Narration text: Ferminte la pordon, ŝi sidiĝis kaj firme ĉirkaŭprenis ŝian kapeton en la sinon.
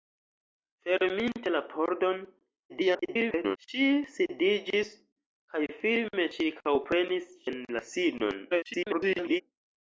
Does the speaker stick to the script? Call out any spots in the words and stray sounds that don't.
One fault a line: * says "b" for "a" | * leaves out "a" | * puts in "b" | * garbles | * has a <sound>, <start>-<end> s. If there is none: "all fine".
* garbles
* leaves out "ŝian kapeton"
* garbles